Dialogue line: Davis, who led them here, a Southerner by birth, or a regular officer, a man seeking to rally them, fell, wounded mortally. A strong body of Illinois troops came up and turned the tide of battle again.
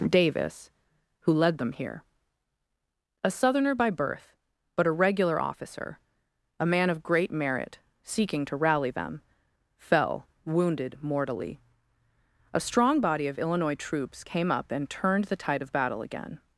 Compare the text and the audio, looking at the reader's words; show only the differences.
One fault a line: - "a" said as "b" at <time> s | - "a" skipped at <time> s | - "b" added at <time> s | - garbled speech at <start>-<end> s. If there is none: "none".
- "or" said as "but" at 4.8 s
- "of great merit" added at 6.9 s